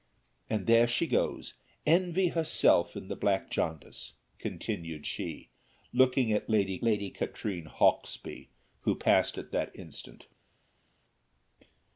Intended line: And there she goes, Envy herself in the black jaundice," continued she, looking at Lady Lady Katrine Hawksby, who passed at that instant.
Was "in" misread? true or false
false